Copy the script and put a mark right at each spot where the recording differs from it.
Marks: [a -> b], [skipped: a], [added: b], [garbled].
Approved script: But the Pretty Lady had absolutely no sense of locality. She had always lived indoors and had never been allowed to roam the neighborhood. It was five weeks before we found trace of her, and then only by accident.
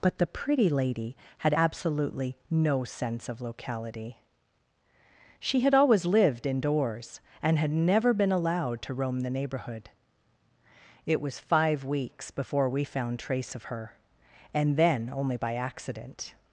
But the Pretty Lady had absolutely no sense of locality. She had always lived indoors and had never been allowed to roam the neighborhood. It was five weeks before we found trace of her, and then only by accident.